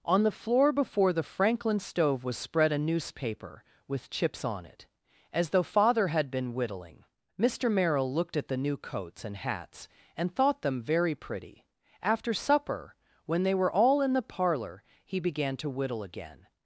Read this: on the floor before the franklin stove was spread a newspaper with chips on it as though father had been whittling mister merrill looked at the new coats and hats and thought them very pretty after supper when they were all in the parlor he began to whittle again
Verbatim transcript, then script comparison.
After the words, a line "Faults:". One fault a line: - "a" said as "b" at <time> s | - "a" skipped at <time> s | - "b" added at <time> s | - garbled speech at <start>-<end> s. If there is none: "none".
on the floor before the franklin stove was spread a newspaper with chips on it as though father had been whittling mister merrill looked at the new coats and hats and thought them very pretty after supper when they were all in the parlor he began to whittle again
Faults:
none